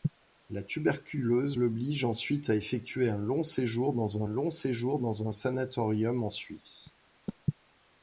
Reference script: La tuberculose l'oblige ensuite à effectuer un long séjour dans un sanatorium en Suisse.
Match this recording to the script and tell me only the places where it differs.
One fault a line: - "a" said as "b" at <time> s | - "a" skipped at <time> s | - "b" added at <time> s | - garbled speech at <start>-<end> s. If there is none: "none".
- "long séjour dans" added at 4.3 s